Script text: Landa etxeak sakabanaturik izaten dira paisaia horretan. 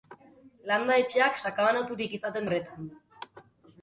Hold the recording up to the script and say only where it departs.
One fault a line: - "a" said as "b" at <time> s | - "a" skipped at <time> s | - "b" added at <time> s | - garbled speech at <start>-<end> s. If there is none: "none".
- "dira paisaia" skipped at 2.5 s